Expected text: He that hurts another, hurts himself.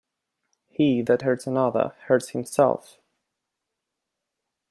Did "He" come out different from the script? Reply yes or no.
no